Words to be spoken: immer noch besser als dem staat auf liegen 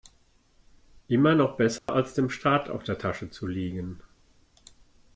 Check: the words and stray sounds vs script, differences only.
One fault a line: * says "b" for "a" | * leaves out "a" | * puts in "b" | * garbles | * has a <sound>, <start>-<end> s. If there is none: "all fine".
* has a dropout, 1.8-1.9 s
* puts in "der tasche zu"